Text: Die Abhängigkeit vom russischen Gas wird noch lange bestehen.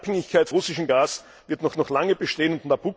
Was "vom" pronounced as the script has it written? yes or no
no